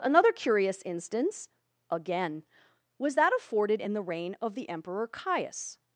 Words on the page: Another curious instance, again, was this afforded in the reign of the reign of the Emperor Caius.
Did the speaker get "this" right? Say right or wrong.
wrong